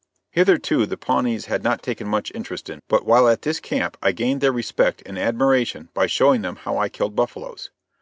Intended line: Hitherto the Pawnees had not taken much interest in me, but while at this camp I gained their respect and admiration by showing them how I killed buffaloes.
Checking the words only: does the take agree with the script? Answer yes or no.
no